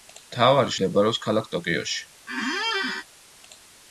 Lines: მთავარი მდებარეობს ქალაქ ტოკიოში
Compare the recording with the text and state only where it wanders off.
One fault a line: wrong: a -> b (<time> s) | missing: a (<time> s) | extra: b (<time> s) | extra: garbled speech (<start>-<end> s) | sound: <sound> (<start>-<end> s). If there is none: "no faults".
sound: squeak (2.3-3.0 s)